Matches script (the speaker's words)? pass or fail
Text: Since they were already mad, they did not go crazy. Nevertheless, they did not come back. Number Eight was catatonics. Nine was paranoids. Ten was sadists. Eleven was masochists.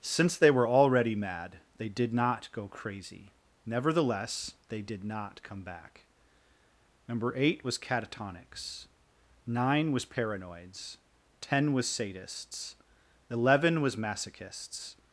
pass